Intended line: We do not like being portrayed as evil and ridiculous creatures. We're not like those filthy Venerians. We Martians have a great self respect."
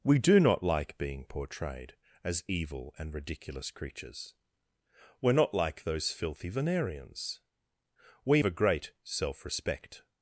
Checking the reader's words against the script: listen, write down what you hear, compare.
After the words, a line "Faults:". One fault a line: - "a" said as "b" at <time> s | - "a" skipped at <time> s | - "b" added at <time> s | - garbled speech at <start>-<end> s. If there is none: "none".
We do not like being portrayed as evil and ridiculous creatures. We're not like those filthy Venerians. We A great self respect."
Faults:
- "Martians have" skipped at 8.4 s